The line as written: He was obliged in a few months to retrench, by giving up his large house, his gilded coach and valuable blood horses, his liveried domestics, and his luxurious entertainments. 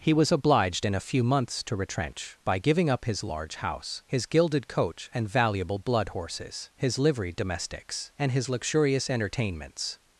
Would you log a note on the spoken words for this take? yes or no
no